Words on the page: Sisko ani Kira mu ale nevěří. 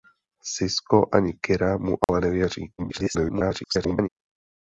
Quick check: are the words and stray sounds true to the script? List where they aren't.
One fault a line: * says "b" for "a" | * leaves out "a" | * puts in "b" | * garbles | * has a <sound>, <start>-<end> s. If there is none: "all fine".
* has a dropout, 2.0-2.1 s
* garbles